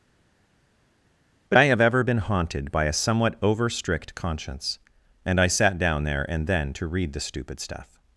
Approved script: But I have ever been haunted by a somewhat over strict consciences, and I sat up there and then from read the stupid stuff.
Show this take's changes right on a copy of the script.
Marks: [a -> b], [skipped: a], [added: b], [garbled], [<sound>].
But I have ever been haunted by a somewhat over strict [consciences, -> conscience] and I sat [up -> down] there and then [from -> to] read the stupid stuff.